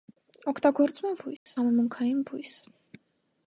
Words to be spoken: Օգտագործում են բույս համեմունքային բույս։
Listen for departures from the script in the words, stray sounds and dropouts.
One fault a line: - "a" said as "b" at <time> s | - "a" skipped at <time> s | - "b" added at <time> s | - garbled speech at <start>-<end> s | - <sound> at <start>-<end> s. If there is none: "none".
- dropout at 1.4-1.5 s